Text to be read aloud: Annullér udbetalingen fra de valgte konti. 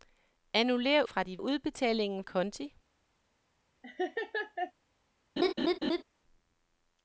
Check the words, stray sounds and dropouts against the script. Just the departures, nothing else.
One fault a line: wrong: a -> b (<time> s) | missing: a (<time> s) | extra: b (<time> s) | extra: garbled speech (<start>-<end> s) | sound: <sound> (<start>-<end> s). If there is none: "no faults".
missing: udbetalingen (1.0 s)
wrong: valgte -> udbetalingen (1.4 s)
sound: laugh (3.8-4.7 s)
sound: laugh (5.4-6.0 s)